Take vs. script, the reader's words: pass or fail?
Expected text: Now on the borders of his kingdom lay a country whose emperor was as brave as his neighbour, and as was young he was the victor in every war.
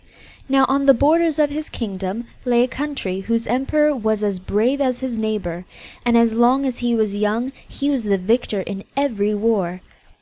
fail